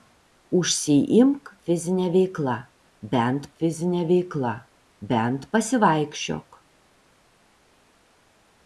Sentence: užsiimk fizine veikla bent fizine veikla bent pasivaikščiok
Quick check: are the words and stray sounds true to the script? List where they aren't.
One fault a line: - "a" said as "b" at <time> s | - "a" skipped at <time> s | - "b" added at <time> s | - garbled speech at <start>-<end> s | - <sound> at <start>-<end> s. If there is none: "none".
none